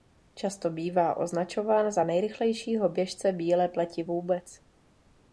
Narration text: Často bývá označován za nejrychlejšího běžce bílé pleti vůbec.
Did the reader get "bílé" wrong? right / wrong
right